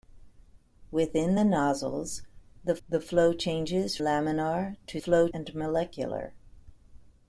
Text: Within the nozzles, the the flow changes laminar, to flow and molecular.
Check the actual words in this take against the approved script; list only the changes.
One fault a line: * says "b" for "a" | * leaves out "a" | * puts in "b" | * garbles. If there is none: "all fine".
all fine